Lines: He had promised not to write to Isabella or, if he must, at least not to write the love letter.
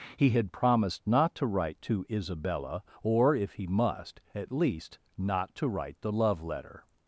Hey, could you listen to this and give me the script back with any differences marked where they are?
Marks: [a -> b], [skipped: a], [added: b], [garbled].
He had promised not to write to Isabella or, if he must, at least not to write the love letter.